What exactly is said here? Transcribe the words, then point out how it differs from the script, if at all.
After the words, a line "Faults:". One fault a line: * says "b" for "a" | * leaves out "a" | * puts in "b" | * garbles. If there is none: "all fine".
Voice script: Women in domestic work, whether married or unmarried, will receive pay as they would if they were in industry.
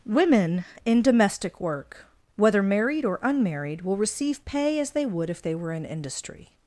Women in domestic work, whether married or unmarried, will receive pay as they would if they were in industry.
Faults:
all fine